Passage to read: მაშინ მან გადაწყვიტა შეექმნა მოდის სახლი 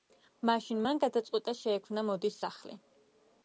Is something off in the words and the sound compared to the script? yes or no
no